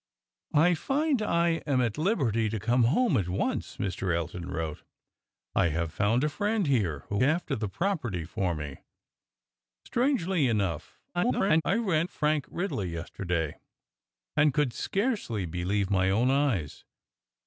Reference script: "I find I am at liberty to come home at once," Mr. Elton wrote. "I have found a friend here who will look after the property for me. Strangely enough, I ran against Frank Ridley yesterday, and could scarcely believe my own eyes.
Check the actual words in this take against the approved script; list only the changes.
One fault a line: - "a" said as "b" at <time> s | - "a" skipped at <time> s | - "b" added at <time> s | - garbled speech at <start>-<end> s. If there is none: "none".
- "will look" skipped at 7.2 s
- garbled speech at 11.1-11.6 s
- "against" skipped at 12.1 s